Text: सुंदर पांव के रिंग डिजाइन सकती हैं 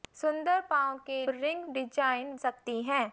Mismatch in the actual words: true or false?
false